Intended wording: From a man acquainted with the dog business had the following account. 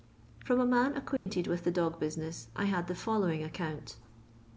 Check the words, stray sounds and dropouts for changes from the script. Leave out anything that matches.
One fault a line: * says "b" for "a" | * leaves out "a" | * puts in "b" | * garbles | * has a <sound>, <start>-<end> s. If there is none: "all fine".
* has a dropout, 1.2-1.3 s
* puts in "I"